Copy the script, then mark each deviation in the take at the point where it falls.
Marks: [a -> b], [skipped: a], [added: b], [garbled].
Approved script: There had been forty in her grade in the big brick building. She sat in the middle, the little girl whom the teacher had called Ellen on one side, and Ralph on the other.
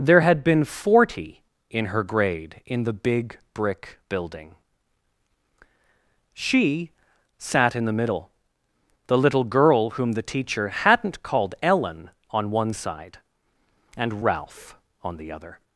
There had been forty in her grade in the big brick building. She sat in the middle, the little girl whom the teacher [had -> hadn't] called Ellen on one side, and Ralph on the other.